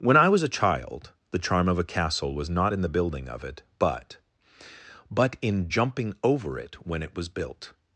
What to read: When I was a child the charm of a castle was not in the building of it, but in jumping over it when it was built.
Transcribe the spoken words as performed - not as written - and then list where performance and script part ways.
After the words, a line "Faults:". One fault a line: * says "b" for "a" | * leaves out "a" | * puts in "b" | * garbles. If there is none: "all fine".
When I was a child the charm of a castle was not in the building of it, but but in jumping over it when it was built.
Faults:
* puts in "but"